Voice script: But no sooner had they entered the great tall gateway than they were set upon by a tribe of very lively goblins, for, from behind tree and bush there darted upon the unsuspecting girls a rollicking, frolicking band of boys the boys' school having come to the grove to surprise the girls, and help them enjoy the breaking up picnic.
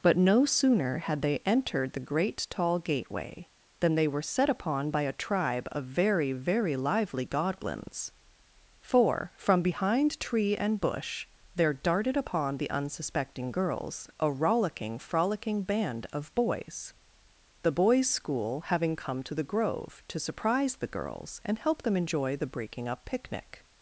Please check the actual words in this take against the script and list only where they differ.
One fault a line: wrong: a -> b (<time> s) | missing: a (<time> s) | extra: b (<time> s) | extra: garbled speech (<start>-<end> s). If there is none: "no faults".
extra: very (6.3 s)